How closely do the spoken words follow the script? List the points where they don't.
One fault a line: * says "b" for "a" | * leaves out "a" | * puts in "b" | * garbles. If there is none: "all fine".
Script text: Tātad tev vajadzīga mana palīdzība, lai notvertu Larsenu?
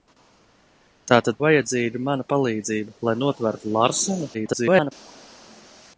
* leaves out "tev"
* garbles